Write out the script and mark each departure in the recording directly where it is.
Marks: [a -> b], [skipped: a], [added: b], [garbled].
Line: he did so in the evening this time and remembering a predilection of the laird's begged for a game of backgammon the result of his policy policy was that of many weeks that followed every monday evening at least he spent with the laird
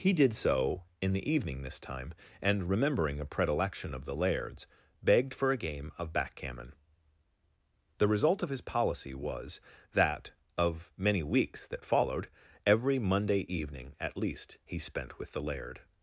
he did so in the evening this time and remembering a predilection of the laird's begged for a game of backgammon the result of his policy [skipped: policy] was that of many weeks that followed every monday evening at least he spent with the laird